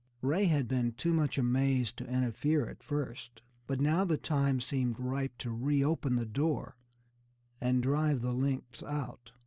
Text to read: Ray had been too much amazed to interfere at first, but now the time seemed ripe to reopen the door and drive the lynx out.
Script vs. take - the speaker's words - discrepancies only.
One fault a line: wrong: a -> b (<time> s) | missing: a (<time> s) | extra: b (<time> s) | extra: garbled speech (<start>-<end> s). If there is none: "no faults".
no faults